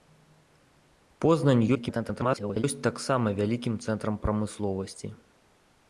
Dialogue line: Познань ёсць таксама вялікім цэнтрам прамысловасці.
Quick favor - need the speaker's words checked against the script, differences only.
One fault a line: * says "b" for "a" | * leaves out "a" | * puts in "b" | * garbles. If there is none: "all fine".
* garbles